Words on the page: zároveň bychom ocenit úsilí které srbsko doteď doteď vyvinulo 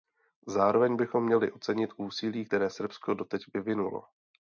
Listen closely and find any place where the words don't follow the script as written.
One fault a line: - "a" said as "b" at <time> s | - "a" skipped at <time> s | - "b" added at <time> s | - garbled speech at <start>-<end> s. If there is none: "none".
- "měli" added at 1.2 s
- "doteď" skipped at 3.4 s